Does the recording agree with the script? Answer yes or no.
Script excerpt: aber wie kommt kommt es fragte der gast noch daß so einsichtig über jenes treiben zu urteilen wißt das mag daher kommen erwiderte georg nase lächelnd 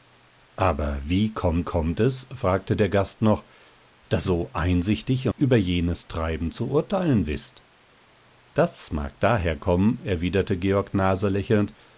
yes